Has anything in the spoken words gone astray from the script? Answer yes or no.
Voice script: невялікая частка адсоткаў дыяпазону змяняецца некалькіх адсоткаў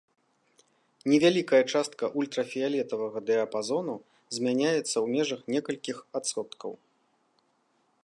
yes